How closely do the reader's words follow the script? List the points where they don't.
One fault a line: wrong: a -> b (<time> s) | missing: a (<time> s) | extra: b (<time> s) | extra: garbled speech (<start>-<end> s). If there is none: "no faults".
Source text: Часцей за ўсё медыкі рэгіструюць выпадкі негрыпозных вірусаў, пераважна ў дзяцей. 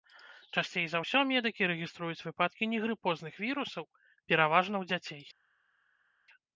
no faults